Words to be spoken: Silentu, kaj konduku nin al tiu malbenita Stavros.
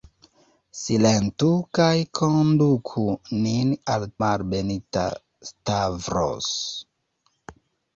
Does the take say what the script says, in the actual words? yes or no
no